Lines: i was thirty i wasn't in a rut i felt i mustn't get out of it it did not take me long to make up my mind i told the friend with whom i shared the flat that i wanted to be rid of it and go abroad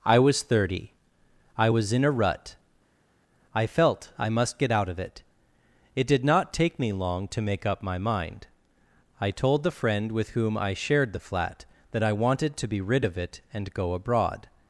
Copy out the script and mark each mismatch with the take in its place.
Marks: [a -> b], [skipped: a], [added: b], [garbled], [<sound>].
i was thirty i [wasn't -> was] in a rut i felt i [mustn't -> must] get out of it it did not take me long to make up my mind i told the friend with whom i shared the flat that i wanted to be rid of it and go abroad